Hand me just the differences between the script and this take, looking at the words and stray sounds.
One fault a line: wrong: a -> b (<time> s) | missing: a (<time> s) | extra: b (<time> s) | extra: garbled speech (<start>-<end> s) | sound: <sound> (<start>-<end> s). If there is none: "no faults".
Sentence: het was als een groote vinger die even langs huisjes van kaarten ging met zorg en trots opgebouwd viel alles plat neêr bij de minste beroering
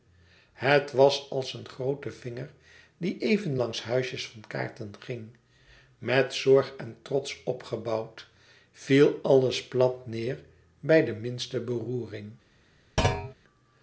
sound: thud (13.0-13.3 s)